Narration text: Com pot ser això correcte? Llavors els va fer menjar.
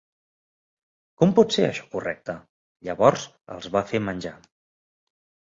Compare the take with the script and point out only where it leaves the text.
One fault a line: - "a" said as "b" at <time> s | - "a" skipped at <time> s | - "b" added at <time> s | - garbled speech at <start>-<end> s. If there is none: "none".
none